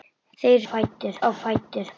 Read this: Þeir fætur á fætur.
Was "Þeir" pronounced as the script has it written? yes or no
yes